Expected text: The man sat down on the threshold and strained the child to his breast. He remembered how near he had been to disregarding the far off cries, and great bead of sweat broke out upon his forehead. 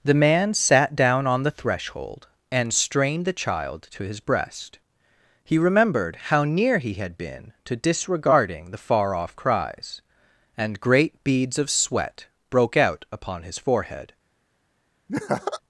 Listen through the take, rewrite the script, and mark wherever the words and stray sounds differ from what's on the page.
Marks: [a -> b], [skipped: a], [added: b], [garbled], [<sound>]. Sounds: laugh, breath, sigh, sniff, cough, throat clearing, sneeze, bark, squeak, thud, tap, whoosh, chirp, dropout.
The man sat down on the threshold and strained the child to his breast. He remembered how near he had been to disregarding the far off cries, and great [bead -> beads] of sweat broke out upon his forehead. [laugh]